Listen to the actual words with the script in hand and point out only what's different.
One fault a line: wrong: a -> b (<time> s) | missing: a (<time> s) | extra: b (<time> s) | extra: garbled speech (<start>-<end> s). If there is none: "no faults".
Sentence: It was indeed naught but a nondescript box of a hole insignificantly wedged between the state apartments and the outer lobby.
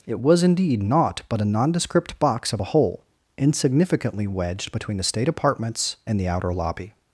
no faults